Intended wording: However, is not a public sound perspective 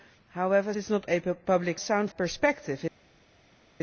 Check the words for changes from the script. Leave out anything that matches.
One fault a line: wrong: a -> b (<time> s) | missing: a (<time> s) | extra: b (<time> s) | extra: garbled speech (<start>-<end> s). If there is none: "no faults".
no faults